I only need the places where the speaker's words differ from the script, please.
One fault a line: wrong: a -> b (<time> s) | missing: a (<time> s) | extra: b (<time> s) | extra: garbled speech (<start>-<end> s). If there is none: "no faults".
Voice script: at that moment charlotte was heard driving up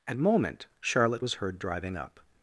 missing: that (0.2 s)